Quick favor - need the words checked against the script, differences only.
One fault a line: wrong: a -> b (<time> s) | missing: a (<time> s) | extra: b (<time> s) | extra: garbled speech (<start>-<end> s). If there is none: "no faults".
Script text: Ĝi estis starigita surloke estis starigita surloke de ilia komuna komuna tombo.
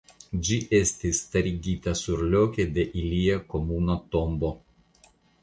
missing: estis starigita surloke (2.7 s)
missing: komuna (4.0 s)